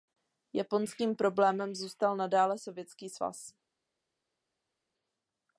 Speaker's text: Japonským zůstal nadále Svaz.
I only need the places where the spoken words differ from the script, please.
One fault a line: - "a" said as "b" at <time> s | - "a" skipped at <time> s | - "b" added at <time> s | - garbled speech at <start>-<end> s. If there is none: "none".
- "problémem" added at 1.1 s
- "Sovětský" added at 2.6 s